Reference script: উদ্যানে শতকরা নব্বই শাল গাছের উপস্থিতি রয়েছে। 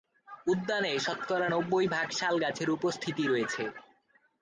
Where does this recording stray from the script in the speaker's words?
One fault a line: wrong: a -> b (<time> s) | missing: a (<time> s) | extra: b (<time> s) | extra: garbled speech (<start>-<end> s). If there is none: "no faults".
extra: ভাগ (1.9 s)